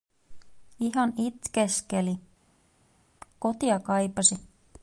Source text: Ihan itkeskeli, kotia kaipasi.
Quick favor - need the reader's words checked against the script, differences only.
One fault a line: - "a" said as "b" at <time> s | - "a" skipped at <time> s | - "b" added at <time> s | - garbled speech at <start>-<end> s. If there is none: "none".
none